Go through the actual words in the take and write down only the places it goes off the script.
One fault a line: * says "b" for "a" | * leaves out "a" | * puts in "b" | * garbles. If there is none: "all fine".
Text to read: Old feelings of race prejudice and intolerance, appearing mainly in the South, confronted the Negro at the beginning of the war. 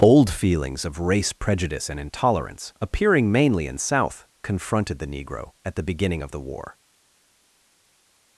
* leaves out "the"